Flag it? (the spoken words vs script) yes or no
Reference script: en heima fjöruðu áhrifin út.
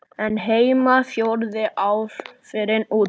no